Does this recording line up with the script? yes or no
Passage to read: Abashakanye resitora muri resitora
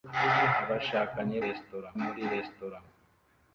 yes